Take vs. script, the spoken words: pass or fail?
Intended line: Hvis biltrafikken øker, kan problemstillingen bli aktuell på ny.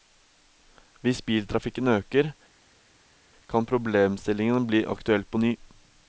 pass